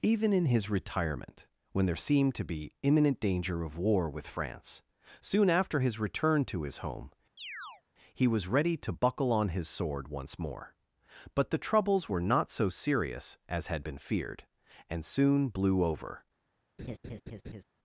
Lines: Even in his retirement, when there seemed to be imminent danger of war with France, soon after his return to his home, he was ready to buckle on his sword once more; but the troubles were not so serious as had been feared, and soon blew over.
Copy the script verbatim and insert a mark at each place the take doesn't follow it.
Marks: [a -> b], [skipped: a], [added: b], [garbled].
Even in his retirement, when there seemed to be imminent danger of war with France, soon after his return to his home, he was ready to buckle on his sword once more; but the troubles were not so serious as had been feared, and soon blew over.